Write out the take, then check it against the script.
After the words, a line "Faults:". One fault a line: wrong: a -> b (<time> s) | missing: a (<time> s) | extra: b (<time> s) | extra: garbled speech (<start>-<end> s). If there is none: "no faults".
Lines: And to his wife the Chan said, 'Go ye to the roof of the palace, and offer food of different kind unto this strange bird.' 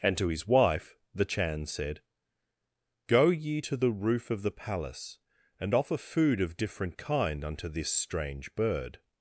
And to his wife the Chan said, 'Go ye to the roof of the palace, and offer food of different kind unto this strange bird.'
Faults:
no faults